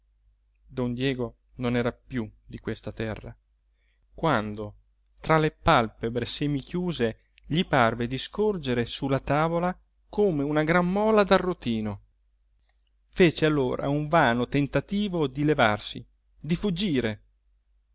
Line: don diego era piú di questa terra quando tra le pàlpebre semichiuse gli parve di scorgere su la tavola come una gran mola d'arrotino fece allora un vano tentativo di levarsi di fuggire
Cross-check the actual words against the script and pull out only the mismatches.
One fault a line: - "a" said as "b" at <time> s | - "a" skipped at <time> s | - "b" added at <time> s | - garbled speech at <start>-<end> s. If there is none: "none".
- "non" added at 1.6 s